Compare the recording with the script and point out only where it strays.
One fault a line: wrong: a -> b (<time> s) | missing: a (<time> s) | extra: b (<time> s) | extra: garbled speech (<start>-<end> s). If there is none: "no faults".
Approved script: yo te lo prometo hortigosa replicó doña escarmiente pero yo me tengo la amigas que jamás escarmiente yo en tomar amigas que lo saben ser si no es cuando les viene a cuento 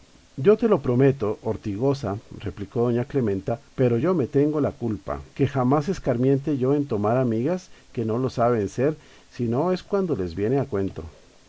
wrong: escarmiente -> clementa (3.0 s)
wrong: amigas -> culpa (4.7 s)
extra: no (8.0 s)